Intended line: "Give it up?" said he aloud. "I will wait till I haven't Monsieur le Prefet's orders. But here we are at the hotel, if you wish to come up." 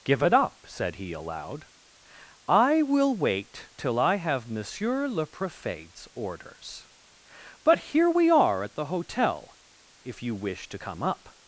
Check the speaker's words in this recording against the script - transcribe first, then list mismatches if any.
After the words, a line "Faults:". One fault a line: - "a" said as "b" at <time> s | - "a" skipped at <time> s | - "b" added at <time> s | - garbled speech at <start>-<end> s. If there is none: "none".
"Give it up?" said he aloud. "I will wait till I have Monsieur le Prefet's orders. But here we are at the hotel, if you wish to come up."
Faults:
- "haven't" said as "have" at 4.2 s